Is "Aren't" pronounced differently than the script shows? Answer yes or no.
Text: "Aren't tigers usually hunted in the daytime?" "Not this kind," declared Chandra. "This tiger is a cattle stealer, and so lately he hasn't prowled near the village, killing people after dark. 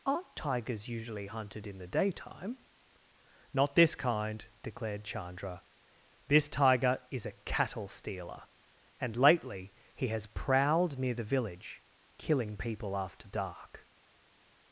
no